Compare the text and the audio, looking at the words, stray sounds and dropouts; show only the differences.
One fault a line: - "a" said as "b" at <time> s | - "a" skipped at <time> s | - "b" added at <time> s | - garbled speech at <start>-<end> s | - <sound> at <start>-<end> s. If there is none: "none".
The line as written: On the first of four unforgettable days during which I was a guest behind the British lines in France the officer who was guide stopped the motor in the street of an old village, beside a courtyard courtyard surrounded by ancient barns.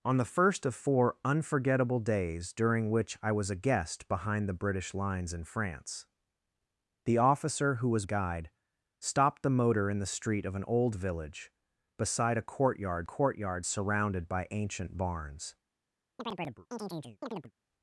- chirp at 16.2-17.5 s